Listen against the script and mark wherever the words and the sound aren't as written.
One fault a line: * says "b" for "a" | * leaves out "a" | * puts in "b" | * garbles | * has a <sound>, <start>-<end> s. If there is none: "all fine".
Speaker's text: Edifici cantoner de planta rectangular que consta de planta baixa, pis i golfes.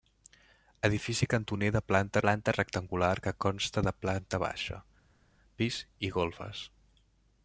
* puts in "planta"